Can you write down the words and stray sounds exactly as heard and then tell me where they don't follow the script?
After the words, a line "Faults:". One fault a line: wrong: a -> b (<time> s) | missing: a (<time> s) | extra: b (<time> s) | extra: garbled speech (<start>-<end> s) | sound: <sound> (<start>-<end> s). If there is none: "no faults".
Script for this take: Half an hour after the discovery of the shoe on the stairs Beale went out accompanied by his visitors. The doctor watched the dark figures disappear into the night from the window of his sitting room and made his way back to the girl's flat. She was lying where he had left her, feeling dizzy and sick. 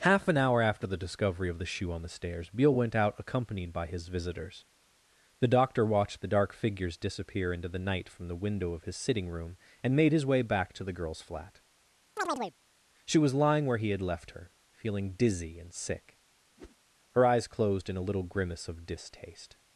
Half an hour after the discovery of the shoe on the stairs Beale went out accompanied by his visitors. The doctor watched the dark figures disappear into the night from the window of his sitting room and made his way back to the girl's flat. She was lying where he had left her, feeling dizzy and sick. Her eyes closed in a little grimace of distaste
Faults:
sound: chirp (12.2-12.5 s)
sound: whoosh (16.6-16.8 s)
extra: Her eyes closed in a little grimace of distaste (17.1 s)